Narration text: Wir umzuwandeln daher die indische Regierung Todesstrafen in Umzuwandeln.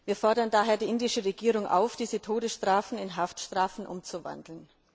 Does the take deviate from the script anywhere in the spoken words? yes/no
yes